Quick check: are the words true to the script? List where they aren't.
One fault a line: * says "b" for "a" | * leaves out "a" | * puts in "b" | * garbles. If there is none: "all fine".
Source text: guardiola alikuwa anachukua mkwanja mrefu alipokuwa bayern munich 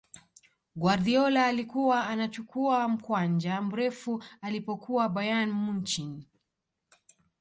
all fine